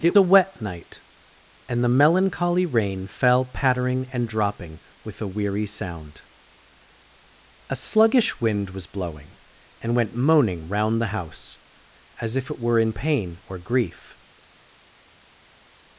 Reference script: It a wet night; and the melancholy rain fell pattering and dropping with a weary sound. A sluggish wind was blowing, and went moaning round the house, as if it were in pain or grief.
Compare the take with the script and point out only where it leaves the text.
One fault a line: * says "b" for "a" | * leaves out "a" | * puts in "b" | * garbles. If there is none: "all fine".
all fine